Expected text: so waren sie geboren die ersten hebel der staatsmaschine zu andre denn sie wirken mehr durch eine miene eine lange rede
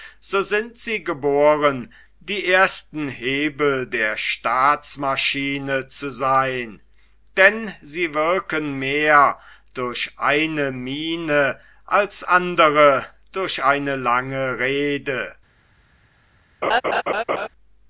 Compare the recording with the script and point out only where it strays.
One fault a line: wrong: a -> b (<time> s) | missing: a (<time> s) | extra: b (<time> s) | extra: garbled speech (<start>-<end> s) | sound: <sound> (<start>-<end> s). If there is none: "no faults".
wrong: waren -> sind (0.4 s)
wrong: andre -> seyn (6.1 s)
extra: als andre durch (11.8 s)
sound: laugh (16.6-17.5 s)